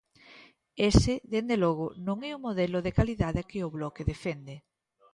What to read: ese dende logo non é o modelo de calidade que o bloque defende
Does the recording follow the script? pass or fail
pass